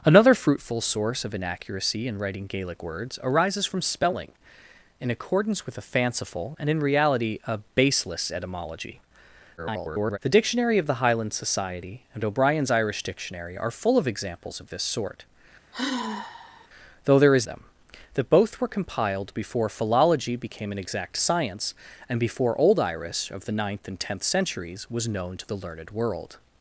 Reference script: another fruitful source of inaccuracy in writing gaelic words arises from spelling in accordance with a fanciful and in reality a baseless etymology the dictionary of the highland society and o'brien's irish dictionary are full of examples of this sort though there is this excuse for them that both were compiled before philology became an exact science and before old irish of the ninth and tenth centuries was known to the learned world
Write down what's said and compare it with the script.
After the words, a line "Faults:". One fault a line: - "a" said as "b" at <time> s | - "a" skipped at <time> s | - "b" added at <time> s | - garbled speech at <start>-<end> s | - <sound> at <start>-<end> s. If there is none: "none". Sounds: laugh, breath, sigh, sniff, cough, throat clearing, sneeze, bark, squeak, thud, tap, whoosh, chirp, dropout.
another fruitful source of inaccuracy in writing gaelic words arises from spelling in accordance with a fanciful and in reality a baseless etymology [garbled] the dictionary of the highland society and o'brien's irish dictionary are full of examples of this sort though there is them that both were compiled before philology became an exact science and before old irish of the ninth and tenth centuries was known to the learned world
Faults:
- garbled speech at 9.6-10.2 s
- sigh at 15.7-16.7 s
- "this excuse for" skipped at 17.5 s